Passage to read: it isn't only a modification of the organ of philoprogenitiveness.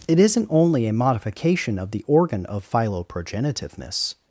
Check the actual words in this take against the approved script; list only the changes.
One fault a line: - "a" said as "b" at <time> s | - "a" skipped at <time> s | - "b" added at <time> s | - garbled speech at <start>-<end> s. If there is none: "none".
none